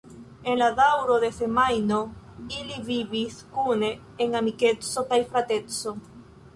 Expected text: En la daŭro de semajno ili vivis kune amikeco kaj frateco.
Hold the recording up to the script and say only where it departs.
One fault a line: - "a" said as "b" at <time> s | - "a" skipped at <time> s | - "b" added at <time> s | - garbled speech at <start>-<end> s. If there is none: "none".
- "en" added at 4.3 s